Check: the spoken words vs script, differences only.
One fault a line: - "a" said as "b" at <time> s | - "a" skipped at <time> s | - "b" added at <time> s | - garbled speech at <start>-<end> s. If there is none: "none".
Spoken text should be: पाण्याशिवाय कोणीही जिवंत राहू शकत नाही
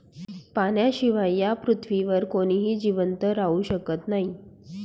- "या पृथ्वीवर" added at 1.4 s